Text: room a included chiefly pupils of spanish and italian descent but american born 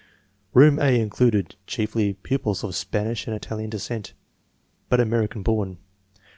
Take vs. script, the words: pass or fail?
pass